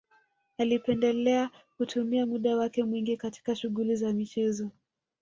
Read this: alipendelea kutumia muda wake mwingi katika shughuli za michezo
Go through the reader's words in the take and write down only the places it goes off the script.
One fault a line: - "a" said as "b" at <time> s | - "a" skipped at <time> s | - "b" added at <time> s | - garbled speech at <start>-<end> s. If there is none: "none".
none